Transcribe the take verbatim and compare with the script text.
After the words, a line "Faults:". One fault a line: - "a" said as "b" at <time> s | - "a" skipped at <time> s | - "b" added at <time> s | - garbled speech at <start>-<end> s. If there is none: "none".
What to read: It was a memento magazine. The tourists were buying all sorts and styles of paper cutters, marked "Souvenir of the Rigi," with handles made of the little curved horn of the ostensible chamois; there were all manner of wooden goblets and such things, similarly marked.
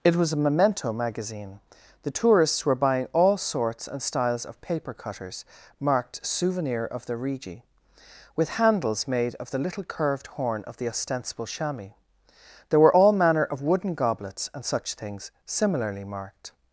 It was a memento magazine. The tourists were buying all sorts and styles of paper cutters, marked "Souvenir of the Rigi," with handles made of the little curved horn of the ostensible chamois; there were all manner of wooden goblets and such things, similarly marked.
Faults:
none